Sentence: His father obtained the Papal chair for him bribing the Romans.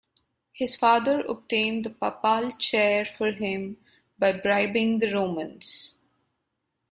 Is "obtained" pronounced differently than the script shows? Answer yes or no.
no